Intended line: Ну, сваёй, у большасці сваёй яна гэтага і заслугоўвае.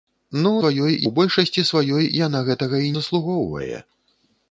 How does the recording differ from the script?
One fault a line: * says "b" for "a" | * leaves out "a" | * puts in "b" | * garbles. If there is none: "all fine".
all fine